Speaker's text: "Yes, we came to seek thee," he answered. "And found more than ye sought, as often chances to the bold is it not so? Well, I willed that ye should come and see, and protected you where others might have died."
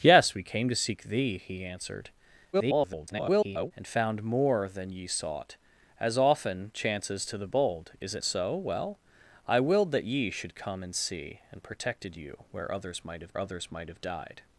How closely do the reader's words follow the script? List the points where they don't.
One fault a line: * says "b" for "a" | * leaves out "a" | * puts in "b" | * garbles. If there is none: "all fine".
* garbles
* leaves out "not"
* puts in "others might have"